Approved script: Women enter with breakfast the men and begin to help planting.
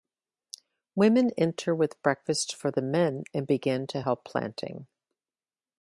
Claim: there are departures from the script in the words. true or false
true